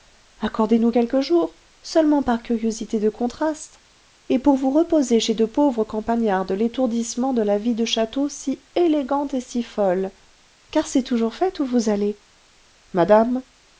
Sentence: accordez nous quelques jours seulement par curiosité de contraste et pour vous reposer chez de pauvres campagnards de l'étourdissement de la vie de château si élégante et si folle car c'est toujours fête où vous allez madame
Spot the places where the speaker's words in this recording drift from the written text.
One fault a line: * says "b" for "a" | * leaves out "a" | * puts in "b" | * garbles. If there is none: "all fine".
all fine